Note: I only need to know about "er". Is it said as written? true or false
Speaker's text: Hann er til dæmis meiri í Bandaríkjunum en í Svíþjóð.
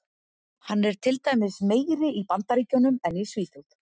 true